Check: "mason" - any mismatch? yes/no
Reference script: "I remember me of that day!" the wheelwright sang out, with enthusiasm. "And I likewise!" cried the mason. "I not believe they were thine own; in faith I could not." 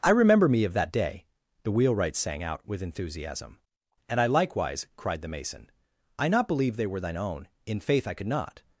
no